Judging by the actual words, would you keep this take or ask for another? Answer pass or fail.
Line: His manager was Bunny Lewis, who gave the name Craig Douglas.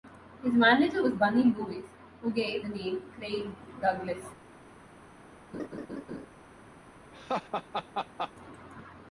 pass